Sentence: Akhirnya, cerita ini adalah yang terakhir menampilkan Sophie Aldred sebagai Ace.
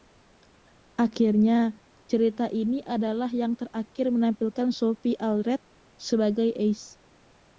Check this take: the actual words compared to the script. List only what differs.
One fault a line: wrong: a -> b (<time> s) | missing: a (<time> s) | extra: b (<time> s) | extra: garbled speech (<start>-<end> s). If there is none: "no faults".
no faults